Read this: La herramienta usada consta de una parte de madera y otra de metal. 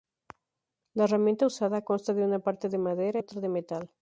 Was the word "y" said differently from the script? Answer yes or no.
yes